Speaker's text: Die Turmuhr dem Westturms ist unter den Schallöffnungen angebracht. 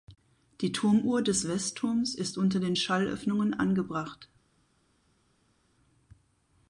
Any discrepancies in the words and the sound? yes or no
yes